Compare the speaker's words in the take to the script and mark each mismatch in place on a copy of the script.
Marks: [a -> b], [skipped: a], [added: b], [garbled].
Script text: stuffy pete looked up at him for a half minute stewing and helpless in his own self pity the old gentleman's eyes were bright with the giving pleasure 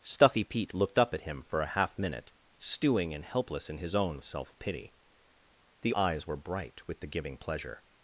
stuffy pete looked up at him for a half minute stewing and helpless in his own self pity the [skipped: old gentleman's] eyes were bright with the giving pleasure